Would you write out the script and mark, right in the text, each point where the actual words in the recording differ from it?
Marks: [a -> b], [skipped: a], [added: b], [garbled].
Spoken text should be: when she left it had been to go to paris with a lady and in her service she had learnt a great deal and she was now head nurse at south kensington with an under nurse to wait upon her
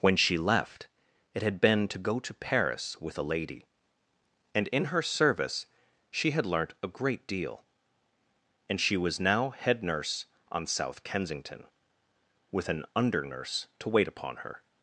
when she left it had been to go to paris with a lady and in her service she had learnt a great deal and she was now head nurse [at -> on] south kensington with an under nurse to wait upon her